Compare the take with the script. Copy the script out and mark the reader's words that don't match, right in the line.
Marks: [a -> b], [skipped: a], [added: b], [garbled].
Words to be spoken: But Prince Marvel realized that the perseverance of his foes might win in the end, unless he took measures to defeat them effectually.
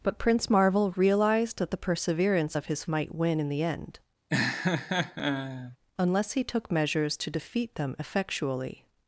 But Prince Marvel realized that the perseverance of his [skipped: foes] might win in the end, unless he took measures to defeat them effectually.